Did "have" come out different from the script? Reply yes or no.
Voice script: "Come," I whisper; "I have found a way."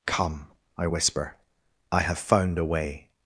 no